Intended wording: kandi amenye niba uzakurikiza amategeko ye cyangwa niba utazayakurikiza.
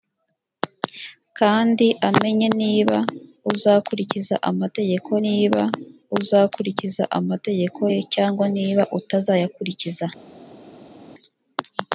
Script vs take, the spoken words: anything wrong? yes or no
yes